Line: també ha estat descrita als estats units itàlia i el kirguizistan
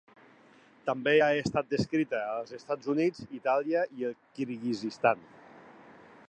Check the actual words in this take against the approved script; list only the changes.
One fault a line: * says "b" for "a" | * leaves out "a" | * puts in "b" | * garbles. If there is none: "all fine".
all fine